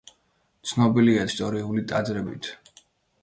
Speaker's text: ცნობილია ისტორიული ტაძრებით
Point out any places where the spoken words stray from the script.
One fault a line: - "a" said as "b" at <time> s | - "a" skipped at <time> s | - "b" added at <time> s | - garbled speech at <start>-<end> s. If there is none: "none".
none